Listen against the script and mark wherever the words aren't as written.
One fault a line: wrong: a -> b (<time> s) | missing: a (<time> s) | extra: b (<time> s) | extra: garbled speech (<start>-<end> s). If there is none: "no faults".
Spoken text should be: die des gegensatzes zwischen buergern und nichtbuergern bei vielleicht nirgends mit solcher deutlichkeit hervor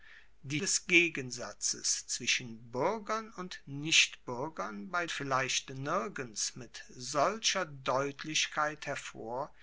no faults